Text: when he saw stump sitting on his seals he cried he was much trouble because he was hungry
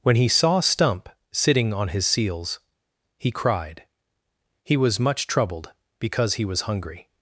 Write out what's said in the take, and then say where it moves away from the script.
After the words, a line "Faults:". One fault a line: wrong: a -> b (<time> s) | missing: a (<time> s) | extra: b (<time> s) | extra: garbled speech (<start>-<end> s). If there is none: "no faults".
when he saw stump sitting on his seals he cried he was much troubled because he was hungry
Faults:
wrong: trouble -> troubled (5.3 s)